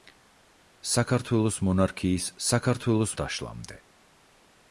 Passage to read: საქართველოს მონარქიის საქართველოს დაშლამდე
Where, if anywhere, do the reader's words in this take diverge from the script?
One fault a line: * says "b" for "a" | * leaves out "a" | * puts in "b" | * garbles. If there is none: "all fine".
all fine